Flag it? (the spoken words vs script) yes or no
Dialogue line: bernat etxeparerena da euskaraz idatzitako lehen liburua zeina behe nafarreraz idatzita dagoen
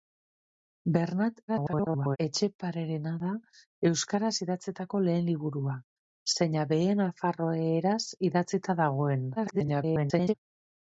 yes